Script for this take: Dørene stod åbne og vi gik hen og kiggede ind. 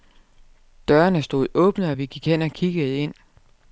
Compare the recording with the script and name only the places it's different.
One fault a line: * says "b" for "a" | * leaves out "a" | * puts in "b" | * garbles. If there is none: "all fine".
all fine